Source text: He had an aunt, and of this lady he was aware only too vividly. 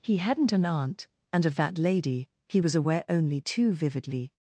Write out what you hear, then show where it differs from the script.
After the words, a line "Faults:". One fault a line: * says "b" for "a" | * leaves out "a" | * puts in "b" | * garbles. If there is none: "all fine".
He hadn't an aunt, and of that lady he was aware only too vividly.
Faults:
* says "hadn't" for "had"
* says "that" for "this"